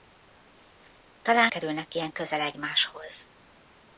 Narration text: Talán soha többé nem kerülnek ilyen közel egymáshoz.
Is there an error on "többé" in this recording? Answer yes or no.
yes